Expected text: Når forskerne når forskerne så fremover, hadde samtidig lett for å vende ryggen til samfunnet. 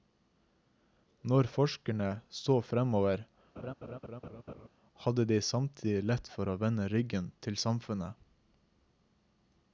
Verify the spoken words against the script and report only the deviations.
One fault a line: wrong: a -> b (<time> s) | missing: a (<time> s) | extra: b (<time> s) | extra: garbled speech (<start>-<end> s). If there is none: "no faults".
missing: når forskerne (2.1 s)
extra: de (5.3 s)